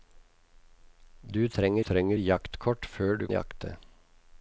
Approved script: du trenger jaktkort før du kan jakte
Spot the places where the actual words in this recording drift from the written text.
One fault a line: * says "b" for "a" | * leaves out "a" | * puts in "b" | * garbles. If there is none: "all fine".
* puts in "trenger"
* leaves out "kan"